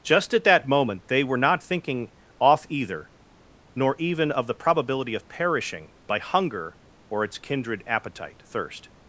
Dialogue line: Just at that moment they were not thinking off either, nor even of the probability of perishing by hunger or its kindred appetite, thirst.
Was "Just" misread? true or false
false